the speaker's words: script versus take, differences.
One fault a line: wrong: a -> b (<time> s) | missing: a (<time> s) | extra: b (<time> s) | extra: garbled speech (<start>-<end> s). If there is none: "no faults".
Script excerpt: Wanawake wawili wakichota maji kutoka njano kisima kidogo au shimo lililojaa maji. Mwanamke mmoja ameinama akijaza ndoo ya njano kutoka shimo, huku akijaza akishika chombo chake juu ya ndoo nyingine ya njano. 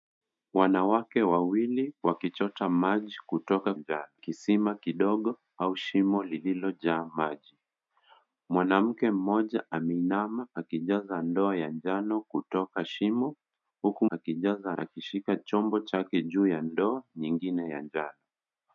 no faults